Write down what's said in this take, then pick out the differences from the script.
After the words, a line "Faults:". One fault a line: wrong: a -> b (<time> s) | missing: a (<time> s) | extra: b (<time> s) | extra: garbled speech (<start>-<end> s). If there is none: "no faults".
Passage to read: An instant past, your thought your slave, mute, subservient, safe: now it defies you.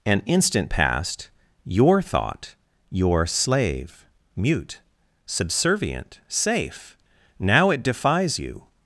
An instant past, your thought your slave, mute, subservient, safe: now it defies you.
Faults:
no faults